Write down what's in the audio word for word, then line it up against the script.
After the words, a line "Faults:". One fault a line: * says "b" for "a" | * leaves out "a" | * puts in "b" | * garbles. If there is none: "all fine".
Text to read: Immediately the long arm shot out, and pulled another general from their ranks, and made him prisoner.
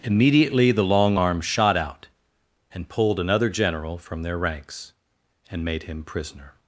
Immediately the long arm shot out, and pulled another general from their ranks, and made him prisoner.
Faults:
all fine